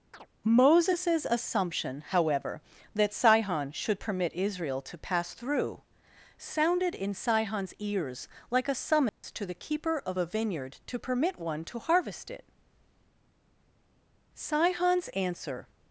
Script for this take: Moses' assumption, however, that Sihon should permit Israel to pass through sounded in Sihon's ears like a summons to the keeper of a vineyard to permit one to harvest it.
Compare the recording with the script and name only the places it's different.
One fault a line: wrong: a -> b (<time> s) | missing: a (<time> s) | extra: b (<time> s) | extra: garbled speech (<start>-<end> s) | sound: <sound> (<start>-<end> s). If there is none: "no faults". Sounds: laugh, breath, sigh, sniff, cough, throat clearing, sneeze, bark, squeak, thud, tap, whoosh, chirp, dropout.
sound: chirp (0.1-0.3 s)
sound: dropout (9.1-9.2 s)
extra: Sihon's answer (14.3 s)